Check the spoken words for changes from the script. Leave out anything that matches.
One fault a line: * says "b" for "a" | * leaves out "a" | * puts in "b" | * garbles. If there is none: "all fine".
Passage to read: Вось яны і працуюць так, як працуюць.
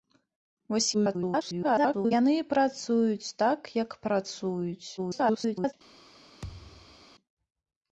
* garbles
* garbles